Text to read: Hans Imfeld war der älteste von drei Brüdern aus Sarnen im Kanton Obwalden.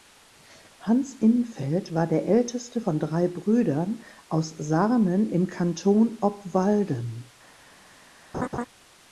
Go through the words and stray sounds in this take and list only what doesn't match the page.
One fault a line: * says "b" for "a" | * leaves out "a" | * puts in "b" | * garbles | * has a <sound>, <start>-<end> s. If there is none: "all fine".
* has a laugh, 8.3-8.7 s